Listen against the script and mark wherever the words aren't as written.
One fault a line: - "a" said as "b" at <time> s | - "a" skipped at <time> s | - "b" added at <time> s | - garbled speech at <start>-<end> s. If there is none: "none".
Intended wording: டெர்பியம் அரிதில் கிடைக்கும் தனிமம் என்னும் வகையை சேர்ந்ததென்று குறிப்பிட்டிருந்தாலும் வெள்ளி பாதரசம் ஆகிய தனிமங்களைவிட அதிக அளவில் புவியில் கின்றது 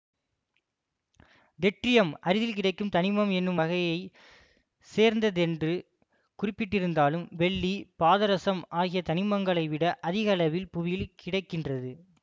- "கிடை" added at 11.1 s